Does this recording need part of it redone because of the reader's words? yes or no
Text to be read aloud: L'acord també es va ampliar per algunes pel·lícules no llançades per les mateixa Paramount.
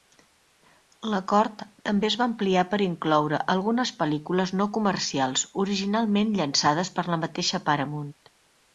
yes